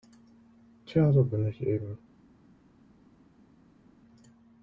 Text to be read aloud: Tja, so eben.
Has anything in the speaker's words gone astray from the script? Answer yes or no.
yes